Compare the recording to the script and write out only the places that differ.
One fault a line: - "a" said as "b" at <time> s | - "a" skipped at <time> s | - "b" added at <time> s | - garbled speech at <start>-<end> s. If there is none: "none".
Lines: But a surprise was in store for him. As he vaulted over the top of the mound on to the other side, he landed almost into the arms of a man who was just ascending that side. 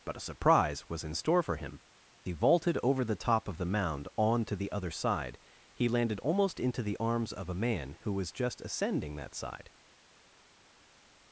- "As" skipped at 1.8 s